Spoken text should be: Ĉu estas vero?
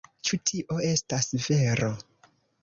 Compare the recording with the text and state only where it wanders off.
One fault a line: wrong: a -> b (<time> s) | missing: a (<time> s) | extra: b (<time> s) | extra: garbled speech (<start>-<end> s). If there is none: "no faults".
extra: tio (0.5 s)